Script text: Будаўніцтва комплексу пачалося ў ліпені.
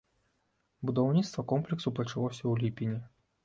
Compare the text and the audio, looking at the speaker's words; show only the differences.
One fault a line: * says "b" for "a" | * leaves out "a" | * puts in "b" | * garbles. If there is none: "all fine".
all fine